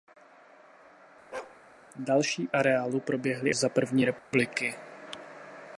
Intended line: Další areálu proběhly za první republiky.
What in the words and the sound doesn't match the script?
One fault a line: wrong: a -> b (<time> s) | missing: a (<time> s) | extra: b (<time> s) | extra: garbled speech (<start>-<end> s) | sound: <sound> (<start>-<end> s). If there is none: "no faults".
sound: bark (1.3-1.6 s)
sound: dropout (4.2-4.3 s)